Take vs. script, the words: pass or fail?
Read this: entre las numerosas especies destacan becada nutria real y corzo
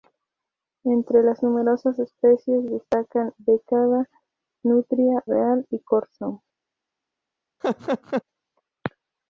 pass